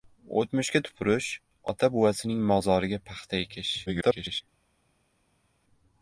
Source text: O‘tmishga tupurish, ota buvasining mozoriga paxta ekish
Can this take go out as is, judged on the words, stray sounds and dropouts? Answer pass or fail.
fail